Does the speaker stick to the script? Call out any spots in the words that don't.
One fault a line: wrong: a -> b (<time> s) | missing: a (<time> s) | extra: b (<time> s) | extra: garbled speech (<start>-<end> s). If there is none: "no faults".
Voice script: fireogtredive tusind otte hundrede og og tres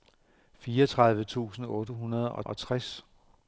no faults